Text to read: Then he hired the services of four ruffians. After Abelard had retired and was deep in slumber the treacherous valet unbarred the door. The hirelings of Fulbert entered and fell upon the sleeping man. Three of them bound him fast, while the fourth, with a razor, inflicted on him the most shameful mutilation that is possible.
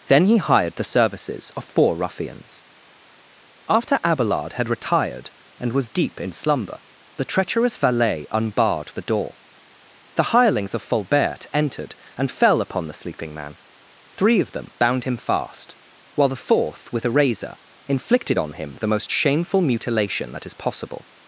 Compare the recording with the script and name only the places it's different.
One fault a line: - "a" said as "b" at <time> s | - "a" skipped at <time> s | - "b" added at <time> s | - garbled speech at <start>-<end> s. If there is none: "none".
none